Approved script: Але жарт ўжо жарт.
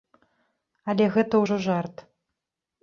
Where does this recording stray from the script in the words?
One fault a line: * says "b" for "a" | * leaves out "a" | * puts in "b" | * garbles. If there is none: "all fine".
* says "гэта" for "жарт"